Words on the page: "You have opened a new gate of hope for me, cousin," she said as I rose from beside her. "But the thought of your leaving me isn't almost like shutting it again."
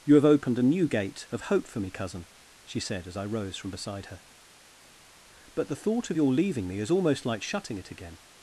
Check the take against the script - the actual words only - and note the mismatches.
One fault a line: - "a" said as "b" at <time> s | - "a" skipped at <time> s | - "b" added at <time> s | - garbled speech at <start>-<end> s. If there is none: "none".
- "isn't" said as "is" at 6.8 s